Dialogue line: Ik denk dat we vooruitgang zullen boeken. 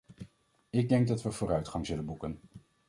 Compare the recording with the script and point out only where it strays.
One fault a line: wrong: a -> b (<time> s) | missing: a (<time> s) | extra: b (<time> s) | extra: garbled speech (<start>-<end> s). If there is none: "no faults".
no faults